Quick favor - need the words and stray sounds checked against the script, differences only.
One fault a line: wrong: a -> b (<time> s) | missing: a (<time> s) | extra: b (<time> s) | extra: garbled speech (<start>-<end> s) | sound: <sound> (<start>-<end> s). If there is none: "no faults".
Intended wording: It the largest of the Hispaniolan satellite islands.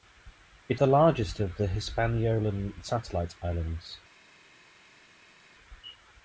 no faults